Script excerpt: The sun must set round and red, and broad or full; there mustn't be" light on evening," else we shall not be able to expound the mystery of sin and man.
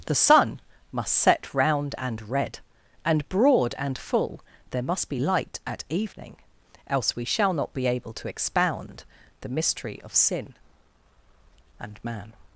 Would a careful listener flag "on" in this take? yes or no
yes